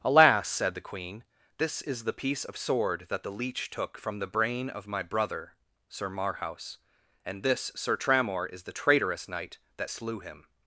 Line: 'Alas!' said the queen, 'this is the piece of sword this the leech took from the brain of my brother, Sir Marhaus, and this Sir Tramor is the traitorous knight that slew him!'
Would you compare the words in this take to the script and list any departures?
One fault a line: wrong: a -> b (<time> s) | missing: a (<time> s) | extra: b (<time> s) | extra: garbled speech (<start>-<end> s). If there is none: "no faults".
wrong: this -> that (3.1 s)